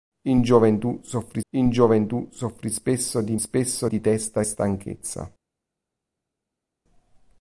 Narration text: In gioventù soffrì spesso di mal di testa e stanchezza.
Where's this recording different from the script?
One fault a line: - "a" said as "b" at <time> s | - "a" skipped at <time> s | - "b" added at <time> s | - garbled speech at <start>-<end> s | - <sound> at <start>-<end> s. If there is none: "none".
- "in gioventù soffrì" added at 1.5 s
- "mal" said as "spesso" at 3.4 s